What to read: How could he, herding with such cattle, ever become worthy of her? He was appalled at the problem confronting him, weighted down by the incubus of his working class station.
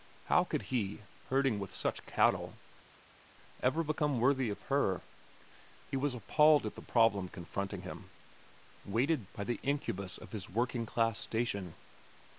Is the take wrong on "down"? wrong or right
wrong